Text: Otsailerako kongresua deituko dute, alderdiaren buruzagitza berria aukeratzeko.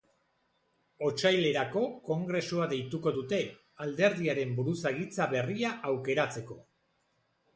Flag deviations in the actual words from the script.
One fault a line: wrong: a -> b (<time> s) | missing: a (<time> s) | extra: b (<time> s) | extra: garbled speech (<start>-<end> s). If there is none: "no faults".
no faults